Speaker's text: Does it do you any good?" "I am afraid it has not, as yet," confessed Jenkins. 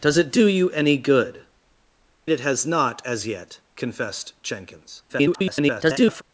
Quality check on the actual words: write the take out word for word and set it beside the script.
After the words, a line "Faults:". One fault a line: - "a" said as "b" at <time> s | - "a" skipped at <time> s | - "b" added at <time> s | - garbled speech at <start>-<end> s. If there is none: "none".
Does it do you any good?" "it has not, as yet," confessed Jenkins. [garbled]
Faults:
- "I am afraid" skipped at 1.4 s
- garbled speech at 5.1-6.2 s